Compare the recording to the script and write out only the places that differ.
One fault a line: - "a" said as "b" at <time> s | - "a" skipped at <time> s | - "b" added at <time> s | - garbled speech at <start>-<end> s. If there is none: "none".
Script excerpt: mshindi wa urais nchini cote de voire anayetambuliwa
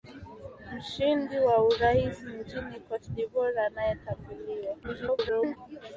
- garbled speech at 4.8-5.6 s